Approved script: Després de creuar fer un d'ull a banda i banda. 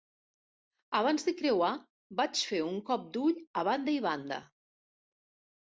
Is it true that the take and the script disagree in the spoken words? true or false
true